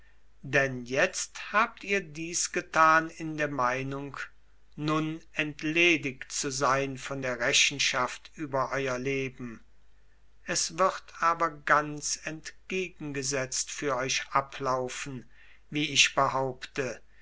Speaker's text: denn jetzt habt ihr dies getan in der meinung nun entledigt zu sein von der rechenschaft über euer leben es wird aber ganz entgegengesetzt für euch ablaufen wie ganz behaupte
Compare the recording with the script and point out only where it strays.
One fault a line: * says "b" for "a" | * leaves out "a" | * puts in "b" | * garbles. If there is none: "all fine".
* says "ich" for "ganz"